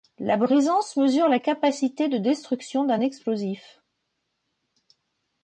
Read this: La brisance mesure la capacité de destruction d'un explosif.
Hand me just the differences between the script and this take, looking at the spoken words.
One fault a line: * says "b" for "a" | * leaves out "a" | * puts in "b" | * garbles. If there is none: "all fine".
all fine